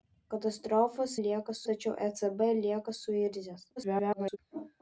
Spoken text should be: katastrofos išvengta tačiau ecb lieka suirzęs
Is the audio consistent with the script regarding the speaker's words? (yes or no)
no